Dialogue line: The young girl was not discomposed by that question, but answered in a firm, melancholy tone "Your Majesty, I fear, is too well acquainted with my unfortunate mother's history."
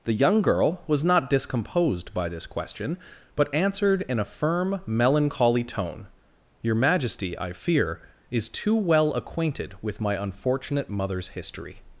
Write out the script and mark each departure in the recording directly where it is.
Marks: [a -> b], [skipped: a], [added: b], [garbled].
The young girl was not discomposed by [that -> this] question, but answered in a firm, melancholy tone "Your Majesty, I fear, is too well acquainted with my unfortunate mother's history."